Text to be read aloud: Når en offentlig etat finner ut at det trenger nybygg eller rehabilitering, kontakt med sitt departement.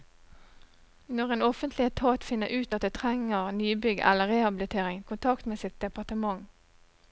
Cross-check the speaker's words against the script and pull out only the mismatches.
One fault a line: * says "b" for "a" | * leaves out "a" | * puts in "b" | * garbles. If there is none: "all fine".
all fine